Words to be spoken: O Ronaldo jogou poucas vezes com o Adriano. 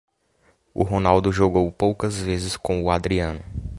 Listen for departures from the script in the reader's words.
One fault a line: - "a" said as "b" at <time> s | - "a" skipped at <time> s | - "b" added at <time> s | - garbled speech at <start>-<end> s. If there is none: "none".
none